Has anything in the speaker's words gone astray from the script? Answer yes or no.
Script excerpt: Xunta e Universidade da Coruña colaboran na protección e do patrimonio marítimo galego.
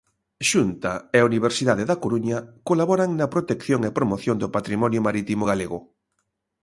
yes